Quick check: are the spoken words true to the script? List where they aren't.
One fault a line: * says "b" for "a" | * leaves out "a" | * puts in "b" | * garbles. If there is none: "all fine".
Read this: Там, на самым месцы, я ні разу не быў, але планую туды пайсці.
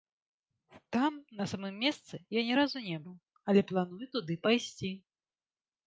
all fine